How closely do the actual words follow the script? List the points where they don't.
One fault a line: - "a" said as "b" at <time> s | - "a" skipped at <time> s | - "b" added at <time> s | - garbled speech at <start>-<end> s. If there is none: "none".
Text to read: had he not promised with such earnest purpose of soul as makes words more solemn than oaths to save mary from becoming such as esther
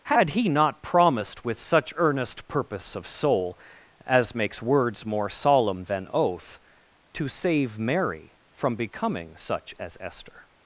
- "oaths" said as "oath" at 6.1 s